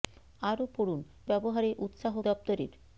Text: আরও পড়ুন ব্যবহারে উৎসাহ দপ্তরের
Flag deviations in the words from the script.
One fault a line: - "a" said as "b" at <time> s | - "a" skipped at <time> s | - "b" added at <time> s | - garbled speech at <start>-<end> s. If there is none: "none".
none